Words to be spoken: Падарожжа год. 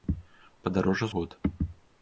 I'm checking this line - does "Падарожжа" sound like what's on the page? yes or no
yes